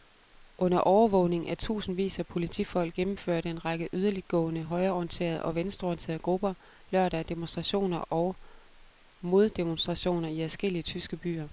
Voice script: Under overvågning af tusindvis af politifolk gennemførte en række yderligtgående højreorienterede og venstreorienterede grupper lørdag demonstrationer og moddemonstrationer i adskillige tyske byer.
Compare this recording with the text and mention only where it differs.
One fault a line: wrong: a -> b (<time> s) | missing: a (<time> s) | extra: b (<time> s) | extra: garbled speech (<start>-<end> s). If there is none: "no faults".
no faults